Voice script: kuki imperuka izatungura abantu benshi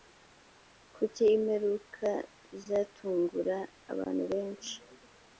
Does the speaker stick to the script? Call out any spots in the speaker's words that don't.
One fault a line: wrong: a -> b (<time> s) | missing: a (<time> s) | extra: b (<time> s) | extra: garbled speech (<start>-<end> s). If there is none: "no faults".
no faults